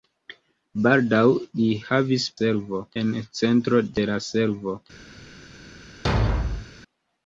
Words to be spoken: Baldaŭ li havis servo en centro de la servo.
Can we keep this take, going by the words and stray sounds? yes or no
no